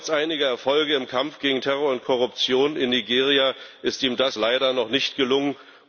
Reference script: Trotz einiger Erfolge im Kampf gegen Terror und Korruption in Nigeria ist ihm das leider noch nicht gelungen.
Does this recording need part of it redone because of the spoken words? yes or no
no